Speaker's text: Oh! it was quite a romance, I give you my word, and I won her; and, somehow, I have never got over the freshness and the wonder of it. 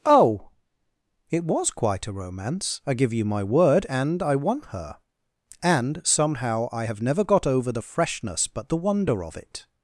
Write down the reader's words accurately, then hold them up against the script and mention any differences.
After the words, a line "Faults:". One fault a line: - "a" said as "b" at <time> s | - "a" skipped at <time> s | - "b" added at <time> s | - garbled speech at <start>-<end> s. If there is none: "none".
Oh! it was quite a romance, I give you my word, and I won her; and, somehow, I have never got over the freshness but the wonder of it.
Faults:
- "and" said as "but" at 8.5 s